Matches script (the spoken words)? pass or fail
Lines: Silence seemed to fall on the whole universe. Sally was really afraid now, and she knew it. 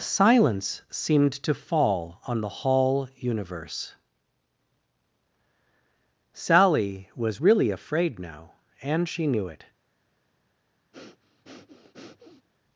fail